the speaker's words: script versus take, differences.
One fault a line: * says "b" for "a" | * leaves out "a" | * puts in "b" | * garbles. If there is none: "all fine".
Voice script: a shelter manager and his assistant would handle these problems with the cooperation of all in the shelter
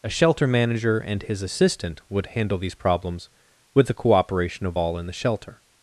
all fine